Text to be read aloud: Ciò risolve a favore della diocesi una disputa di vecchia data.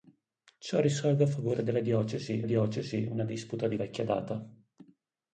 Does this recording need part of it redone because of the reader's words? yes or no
yes